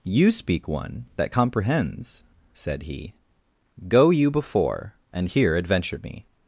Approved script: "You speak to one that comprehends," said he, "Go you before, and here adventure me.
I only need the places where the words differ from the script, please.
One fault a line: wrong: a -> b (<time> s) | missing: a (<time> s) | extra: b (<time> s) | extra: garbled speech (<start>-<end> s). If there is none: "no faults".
missing: to (0.7 s)